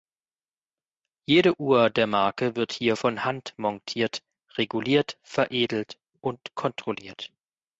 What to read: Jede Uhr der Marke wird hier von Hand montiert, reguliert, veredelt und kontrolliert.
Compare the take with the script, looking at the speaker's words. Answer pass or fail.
pass